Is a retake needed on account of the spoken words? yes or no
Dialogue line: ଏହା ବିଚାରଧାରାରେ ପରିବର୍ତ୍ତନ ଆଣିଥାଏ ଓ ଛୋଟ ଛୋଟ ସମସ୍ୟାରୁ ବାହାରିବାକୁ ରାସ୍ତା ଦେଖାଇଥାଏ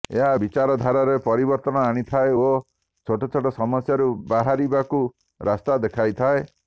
no